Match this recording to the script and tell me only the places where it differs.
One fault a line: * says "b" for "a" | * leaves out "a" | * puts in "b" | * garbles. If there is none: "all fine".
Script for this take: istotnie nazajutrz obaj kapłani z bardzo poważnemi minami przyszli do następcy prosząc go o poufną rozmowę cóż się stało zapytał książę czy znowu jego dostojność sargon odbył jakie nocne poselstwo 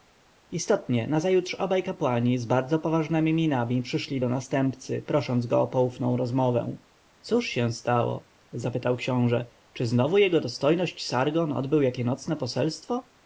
all fine